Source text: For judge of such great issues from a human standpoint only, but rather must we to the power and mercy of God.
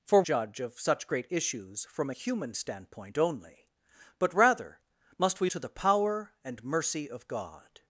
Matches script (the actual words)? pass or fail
pass